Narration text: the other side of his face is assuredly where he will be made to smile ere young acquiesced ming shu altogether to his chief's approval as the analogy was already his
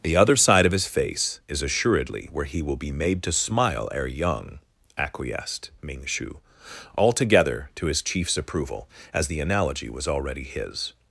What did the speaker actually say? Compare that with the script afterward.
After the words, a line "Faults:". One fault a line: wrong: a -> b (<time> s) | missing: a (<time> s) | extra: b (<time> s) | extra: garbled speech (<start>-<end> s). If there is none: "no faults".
the other side of his face is assuredly where he will be made to smile ere young acquiesced ming shu altogether to his chief's approval as the analogy was already his
Faults:
no faults